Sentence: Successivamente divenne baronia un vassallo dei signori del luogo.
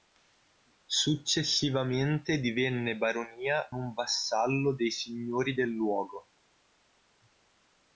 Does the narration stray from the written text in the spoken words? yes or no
no